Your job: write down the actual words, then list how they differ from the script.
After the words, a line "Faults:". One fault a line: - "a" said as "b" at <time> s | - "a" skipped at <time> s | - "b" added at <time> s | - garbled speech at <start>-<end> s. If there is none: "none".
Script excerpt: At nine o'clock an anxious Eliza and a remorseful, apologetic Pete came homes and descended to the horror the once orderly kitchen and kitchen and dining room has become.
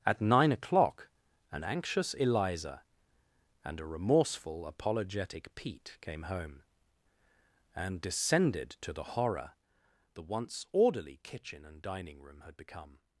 At nine o'clock an anxious Eliza and a remorseful, apologetic Pete came home and descended to the horror the once orderly kitchen and dining room had become.
Faults:
- "homes" said as "home" at 6.2 s
- "kitchen and" skipped at 11.8 s
- "has" said as "had" at 12.4 s